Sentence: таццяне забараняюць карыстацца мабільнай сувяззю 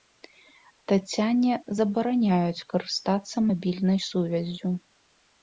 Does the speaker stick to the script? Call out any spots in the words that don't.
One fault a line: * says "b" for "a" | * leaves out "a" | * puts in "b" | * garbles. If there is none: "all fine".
all fine